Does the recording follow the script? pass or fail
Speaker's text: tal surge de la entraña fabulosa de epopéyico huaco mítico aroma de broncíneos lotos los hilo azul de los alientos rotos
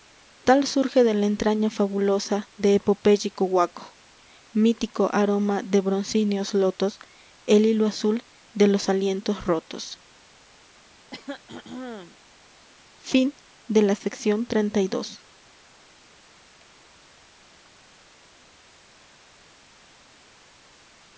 fail